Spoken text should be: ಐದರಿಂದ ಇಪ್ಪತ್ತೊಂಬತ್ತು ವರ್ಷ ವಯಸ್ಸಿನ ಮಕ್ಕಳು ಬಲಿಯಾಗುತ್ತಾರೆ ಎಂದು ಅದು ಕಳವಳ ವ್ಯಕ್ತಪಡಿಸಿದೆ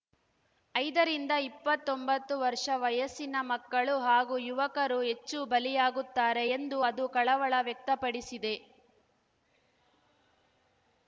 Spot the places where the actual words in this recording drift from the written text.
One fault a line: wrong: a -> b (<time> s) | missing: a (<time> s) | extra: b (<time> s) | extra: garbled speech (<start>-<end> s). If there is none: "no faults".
extra: ಹಾಗೂ ಯುವಕರು ಹೆಚ್ಚು (4.0 s)